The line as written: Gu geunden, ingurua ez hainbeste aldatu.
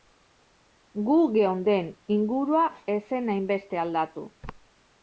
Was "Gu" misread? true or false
false